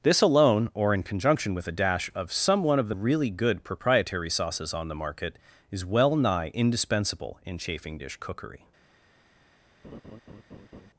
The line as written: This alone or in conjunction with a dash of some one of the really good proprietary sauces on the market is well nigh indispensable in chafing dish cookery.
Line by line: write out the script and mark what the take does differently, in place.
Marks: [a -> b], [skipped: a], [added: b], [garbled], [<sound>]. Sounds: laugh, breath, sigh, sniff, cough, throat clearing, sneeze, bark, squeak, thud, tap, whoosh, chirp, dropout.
This alone or in conjunction with a dash of some one of the really good proprietary sauces on the market is well nigh indispensable in chafing dish cookery. [laugh]